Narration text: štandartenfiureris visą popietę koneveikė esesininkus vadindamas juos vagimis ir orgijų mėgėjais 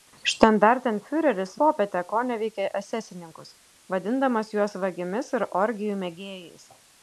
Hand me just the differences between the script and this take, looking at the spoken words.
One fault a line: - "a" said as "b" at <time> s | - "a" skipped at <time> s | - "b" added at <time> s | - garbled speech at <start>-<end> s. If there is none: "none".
- "visą" skipped at 1.5 s